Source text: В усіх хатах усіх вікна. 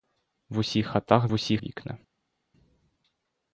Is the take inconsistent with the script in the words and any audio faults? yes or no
no